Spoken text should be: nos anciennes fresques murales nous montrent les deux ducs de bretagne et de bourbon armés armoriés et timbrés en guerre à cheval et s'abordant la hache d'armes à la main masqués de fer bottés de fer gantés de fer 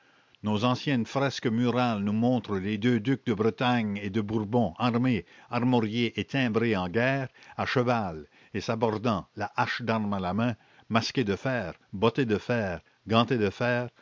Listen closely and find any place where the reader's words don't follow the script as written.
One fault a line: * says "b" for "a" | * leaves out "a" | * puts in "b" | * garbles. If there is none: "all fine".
all fine